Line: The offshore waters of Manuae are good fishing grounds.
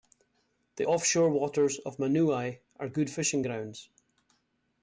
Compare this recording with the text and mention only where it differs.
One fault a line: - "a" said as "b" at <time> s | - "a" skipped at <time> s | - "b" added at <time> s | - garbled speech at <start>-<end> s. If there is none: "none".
none